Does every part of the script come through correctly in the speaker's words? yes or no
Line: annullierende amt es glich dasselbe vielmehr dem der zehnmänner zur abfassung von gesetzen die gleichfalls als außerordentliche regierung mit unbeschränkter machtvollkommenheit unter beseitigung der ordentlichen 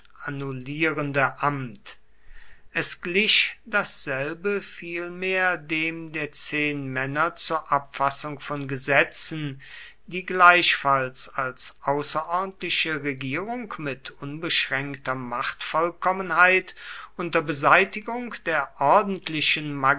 yes